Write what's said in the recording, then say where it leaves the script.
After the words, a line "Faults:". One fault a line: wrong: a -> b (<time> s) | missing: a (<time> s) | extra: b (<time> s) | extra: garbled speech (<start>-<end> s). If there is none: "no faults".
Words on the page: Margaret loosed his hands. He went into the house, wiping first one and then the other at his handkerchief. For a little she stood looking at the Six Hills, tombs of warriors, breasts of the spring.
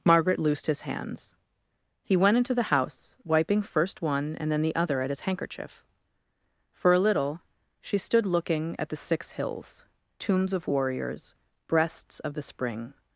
Margaret loosed his hands. He went into the house, wiping first one and then the other at his handkerchief. For a little she stood looking at the Six Hills, tombs of warriors, breasts of the spring.
Faults:
no faults